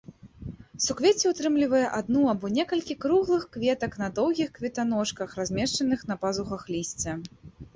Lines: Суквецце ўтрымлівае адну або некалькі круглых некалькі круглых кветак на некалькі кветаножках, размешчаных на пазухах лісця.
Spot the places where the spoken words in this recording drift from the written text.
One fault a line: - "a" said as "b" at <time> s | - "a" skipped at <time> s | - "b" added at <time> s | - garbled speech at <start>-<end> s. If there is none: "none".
- "некалькі круглых" skipped at 3.4 s
- "некалькі" said as "доўгіх" at 4.2 s